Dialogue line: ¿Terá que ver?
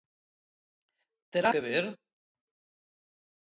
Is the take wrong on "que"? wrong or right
right